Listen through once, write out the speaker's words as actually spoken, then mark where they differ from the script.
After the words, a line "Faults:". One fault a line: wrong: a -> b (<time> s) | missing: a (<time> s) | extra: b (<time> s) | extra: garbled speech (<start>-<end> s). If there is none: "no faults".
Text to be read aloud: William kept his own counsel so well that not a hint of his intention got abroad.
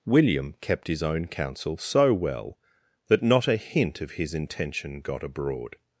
William kept his own counsel so well that not a hint of his intention got abroad.
Faults:
no faults